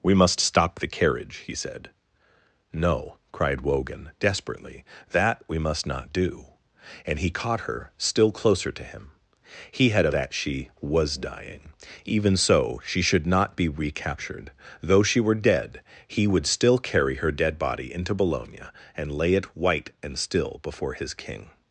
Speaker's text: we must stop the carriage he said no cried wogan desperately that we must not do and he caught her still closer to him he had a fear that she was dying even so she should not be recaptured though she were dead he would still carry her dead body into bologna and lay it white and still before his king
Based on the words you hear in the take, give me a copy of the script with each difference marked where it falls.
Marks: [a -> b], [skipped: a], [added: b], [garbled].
we must stop the carriage he said no cried wogan desperately that we must not do and he caught her still closer to him he had a [skipped: fear] that she was dying even so she should not be recaptured though she were dead he would still carry her dead body into bologna and lay it white and still before his king